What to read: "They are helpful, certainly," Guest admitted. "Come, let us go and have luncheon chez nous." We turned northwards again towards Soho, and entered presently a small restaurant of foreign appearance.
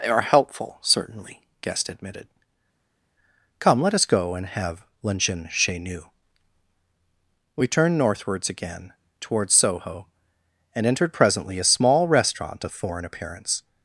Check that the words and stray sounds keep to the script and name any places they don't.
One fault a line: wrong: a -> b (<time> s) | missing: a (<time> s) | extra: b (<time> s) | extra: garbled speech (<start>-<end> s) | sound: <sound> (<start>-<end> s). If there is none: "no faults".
no faults